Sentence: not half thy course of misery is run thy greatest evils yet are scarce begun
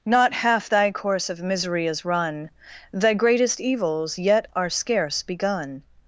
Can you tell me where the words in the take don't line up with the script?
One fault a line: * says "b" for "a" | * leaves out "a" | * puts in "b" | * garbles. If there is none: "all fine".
all fine